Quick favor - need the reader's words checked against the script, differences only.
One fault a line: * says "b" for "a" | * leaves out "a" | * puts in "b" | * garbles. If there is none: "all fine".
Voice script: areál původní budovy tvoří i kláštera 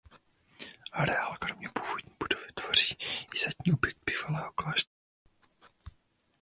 * puts in "kromě"
* puts in "zadní objekt bývalého"